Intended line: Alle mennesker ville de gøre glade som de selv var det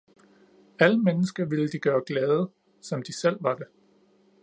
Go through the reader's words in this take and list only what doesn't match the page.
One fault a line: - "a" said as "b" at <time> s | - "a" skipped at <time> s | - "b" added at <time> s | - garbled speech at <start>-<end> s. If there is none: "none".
none